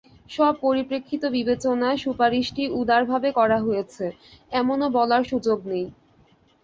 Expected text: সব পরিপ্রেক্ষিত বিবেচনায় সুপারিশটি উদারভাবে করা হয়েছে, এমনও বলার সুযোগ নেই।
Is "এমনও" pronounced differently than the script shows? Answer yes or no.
no